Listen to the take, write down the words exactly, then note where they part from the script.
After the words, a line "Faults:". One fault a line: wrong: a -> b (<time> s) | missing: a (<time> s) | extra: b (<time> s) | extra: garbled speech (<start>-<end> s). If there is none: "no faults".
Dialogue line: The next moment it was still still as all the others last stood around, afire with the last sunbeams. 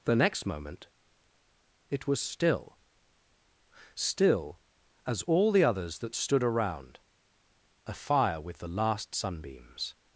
The next moment it was still still as all the others that stood around, afire with the last sunbeams.
Faults:
wrong: last -> that (6.0 s)